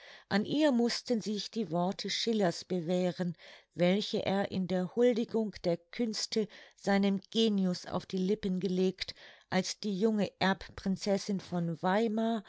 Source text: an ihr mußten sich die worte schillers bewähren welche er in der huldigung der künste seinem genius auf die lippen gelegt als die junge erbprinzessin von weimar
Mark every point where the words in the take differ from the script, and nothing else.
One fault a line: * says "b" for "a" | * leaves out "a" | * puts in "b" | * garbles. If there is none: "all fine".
all fine